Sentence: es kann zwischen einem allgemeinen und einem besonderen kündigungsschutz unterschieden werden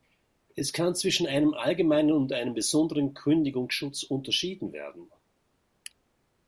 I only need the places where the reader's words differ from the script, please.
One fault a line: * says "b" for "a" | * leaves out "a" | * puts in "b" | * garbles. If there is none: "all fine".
all fine